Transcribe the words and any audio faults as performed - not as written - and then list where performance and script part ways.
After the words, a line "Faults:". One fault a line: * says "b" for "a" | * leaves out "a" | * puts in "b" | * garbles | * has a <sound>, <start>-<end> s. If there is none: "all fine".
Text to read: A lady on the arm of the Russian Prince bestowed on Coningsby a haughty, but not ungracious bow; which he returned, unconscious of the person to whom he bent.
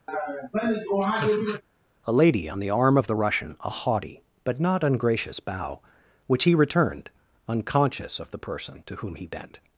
A lady on the arm of the Russian a haughty, but not ungracious bow; which he returned, unconscious of the person to whom he bent.
Faults:
* has a laugh, 0.1-1.6 s
* leaves out "Prince bestowed on Coningsby"